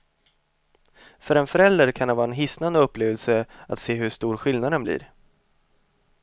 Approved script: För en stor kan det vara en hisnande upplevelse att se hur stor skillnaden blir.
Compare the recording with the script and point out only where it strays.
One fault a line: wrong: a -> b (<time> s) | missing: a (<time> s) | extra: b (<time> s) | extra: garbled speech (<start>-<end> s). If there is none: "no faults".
wrong: stor -> förälder (1.5 s)